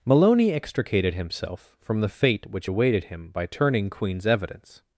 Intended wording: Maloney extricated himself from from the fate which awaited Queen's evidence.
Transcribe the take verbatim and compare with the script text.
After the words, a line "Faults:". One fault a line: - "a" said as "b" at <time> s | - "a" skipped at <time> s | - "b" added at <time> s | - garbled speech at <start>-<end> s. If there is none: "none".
Maloney extricated himself from the fate which awaited him by turning Queen's evidence.
Faults:
- "from" skipped at 2.0 s
- "him by turning" added at 3.0 s